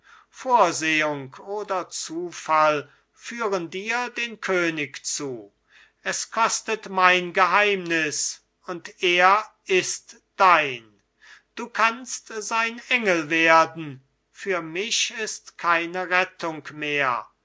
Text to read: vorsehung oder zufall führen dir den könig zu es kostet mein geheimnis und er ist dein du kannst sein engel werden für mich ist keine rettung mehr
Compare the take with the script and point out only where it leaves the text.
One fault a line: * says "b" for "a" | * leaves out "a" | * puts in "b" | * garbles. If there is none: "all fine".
all fine